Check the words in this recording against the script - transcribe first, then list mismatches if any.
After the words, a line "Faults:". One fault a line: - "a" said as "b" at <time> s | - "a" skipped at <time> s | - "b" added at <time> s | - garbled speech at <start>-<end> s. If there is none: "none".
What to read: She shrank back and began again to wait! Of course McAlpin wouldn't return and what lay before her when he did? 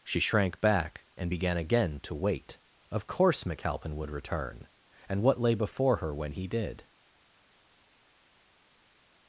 She shrank back and began again to wait! Of course McAlpin would return and what lay before her when he did?
Faults:
- "wouldn't" said as "would" at 3.9 s